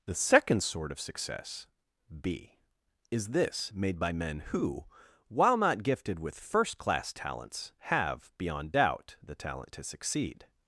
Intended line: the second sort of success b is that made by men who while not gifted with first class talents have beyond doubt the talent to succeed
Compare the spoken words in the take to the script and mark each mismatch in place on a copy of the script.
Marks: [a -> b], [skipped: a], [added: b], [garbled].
the second sort of success b is [that -> this] made by men who while not gifted with first class talents have beyond doubt the talent to succeed